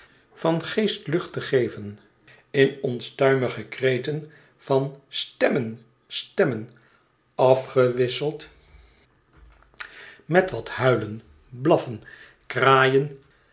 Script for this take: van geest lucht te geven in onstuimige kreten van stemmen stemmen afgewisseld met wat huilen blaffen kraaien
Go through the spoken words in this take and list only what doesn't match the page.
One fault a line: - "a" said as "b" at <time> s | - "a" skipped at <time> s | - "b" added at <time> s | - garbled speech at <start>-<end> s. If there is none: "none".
none